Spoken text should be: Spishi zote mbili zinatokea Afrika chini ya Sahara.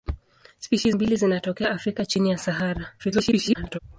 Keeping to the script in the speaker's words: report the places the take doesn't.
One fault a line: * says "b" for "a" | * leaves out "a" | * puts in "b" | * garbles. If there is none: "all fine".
* leaves out "zote"
* garbles